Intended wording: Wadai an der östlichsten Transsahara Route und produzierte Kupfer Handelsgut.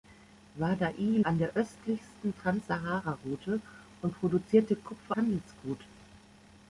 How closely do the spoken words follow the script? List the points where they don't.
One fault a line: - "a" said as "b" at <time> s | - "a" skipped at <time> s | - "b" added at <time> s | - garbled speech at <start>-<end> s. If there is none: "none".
none